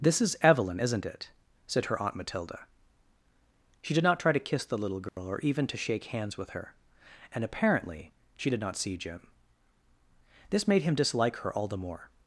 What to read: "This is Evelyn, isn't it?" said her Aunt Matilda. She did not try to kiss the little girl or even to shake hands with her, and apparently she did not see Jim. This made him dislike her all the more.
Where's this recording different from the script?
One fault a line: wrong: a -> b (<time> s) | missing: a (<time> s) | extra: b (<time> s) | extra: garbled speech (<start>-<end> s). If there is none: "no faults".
no faults